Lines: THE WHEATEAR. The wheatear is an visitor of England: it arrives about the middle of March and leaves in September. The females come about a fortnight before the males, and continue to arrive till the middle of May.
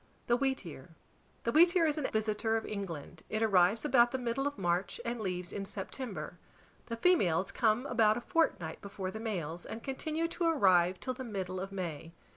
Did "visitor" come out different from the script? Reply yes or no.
no